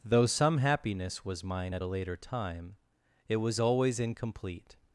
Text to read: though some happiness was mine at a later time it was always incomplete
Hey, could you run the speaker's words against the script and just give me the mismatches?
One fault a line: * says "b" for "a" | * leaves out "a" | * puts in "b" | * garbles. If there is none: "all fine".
all fine